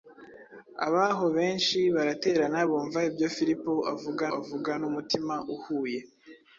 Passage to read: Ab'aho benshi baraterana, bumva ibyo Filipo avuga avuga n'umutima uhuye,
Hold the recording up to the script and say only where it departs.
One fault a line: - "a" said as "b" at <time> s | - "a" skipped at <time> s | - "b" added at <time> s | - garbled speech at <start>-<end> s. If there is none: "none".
none